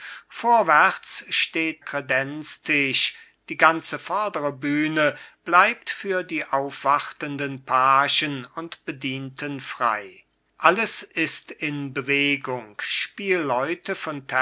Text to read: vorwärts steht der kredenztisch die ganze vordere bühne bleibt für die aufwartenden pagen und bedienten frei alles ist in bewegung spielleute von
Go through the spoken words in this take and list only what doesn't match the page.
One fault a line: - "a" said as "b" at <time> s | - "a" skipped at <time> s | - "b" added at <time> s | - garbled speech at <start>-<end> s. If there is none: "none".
- "der" skipped at 1.9 s